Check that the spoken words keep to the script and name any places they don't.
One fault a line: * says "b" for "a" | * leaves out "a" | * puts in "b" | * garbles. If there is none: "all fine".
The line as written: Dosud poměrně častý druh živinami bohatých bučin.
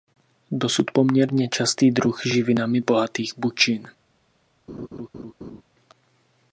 all fine